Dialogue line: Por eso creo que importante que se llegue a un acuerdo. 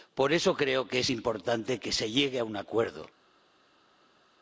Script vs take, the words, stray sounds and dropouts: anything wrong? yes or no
yes